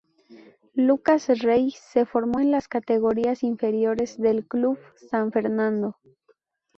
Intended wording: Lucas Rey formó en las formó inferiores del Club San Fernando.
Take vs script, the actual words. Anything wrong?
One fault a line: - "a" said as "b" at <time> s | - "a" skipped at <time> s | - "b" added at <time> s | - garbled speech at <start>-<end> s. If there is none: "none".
- "se" added at 1.7 s
- "formó" said as "categorías" at 2.7 s